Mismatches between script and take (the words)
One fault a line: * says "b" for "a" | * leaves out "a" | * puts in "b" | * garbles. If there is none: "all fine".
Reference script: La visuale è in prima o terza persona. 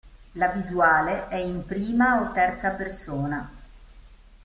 all fine